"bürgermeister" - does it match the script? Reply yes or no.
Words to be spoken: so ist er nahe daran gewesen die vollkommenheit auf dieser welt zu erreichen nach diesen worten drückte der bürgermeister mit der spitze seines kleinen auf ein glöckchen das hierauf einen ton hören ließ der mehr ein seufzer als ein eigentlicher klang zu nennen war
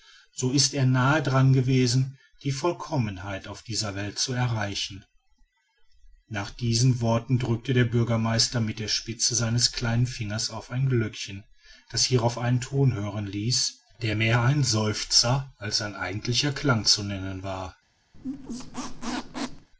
yes